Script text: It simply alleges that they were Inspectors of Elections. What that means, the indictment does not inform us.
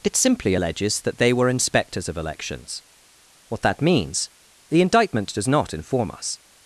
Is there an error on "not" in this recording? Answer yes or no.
no